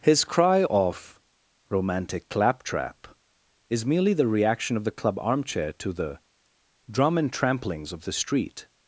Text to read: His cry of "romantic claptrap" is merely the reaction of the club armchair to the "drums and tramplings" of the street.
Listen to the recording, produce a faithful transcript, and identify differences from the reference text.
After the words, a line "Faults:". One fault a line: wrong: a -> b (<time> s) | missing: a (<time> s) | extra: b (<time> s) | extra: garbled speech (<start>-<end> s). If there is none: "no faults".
His cry of "romantic claptrap" is merely the reaction of the club armchair to the "drum and tramplings" of the street.
Faults:
wrong: drums -> drum (6.9 s)